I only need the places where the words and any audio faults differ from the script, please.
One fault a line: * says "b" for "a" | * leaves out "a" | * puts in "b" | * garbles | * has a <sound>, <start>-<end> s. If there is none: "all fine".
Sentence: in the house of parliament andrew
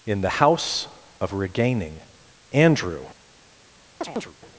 * says "regaining" for "parliament"
* has a chirp, 4.0-4.4 s